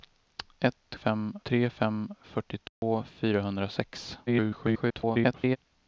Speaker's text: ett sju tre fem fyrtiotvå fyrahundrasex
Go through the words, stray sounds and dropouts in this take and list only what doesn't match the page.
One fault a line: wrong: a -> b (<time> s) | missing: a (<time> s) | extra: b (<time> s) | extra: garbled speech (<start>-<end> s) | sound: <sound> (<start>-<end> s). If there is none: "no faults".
wrong: sju -> fem (0.9 s)
sound: dropout (2.7-2.8 s)
extra: garbled speech (4.3-5.6 s)